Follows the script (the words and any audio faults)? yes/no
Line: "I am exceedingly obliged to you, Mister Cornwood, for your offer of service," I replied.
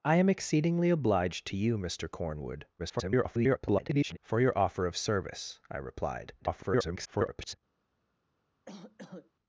no